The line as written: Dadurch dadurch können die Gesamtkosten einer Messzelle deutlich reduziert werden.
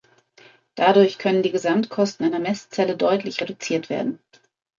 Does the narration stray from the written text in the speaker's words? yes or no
yes